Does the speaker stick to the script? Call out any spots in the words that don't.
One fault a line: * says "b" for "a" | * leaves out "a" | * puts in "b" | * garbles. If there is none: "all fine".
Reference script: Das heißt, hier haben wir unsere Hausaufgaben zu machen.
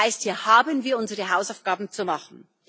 all fine